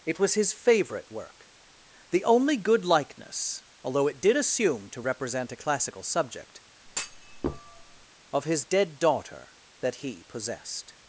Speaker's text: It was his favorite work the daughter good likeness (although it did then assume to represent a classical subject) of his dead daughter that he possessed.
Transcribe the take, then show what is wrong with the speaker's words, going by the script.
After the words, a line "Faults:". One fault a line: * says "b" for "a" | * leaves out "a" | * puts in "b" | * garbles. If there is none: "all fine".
It was his favorite work the only good likeness (although it did assume to represent a classical subject) of his dead daughter that he possessed.
Faults:
* says "only" for "daughter"
* leaves out "then"